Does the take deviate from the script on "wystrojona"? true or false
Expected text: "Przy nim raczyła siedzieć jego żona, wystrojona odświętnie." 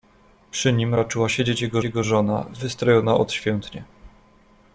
false